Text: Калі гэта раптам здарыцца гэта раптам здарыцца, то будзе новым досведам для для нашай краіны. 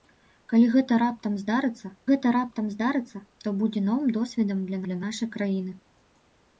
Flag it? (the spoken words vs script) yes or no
no